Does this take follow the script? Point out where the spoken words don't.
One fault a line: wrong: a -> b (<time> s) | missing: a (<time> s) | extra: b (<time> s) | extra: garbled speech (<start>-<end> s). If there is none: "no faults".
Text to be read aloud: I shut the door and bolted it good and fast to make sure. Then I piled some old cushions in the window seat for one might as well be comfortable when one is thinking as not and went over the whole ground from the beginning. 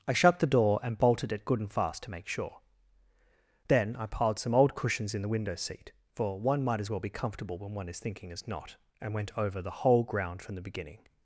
no faults